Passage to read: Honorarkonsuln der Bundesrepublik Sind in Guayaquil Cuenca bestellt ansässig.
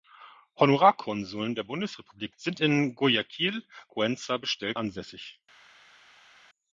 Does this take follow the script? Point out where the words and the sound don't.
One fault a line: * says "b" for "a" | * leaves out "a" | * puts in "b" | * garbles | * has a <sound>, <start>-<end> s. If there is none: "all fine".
all fine